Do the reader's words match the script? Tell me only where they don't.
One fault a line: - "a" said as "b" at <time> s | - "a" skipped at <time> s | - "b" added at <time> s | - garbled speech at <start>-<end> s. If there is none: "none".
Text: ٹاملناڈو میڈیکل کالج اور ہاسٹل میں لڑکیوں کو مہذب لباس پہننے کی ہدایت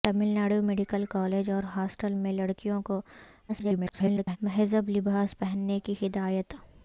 - garbled speech at 3.5-4.4 s